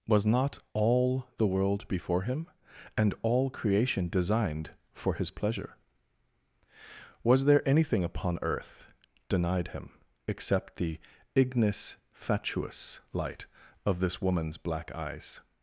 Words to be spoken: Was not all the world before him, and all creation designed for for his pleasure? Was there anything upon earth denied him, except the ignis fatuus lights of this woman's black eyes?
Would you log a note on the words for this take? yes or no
yes